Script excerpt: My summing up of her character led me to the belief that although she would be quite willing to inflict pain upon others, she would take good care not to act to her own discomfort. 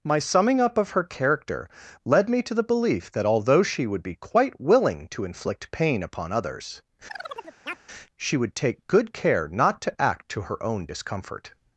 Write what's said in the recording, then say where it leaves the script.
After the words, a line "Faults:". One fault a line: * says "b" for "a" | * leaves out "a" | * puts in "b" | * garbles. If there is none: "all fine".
My summing up of her character led me to the belief that although she would be quite willing to inflict pain upon others, she would take good care not to act to her own discomfort.
Faults:
all fine